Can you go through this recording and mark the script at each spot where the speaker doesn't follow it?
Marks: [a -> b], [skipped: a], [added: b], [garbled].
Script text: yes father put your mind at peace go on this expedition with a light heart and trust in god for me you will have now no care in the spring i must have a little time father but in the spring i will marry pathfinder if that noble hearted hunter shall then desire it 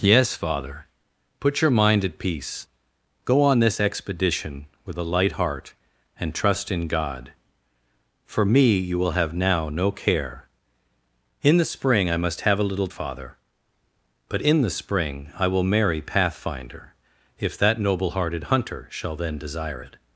yes father put your mind at peace go on this expedition with a light heart and trust in god for me you will have now no care in the spring i must have a little [skipped: time] father but in the spring i will marry pathfinder if that noble hearted hunter shall then desire it